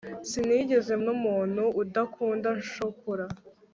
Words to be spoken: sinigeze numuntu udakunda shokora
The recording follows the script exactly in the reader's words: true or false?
true